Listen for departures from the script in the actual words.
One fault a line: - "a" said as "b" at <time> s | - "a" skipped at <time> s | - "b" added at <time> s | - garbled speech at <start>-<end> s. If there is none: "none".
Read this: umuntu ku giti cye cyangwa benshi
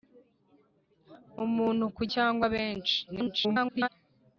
- "giti cye" skipped at 2.0 s
- garbled speech at 3.1-3.9 s